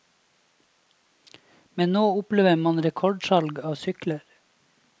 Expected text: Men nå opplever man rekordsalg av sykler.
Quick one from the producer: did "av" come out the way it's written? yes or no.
yes